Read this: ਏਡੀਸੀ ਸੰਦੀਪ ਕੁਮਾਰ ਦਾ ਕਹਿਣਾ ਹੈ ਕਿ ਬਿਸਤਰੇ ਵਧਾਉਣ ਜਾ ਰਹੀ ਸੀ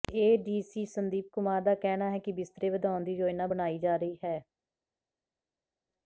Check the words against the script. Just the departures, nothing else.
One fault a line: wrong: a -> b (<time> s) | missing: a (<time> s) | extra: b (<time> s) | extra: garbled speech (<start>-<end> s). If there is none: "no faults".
extra: ਦੀ ਯੋਜਨਾ ਬਣਾਈ (3.0 s)
wrong: ਸੀ -> ਹੈ (4.2 s)